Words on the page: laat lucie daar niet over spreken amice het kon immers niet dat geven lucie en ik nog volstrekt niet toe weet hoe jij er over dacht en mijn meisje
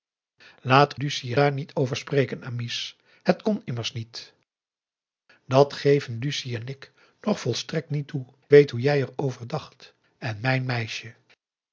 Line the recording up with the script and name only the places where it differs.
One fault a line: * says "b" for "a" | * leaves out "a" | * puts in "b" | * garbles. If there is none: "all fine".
all fine